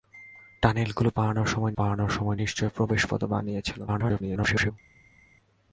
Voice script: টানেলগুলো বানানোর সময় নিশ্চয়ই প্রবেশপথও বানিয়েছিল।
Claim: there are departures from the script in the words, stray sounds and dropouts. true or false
true